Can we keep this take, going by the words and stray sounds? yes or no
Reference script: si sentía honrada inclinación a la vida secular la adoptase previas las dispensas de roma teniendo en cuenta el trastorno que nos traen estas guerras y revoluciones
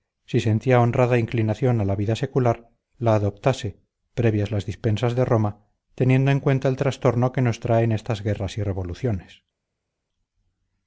yes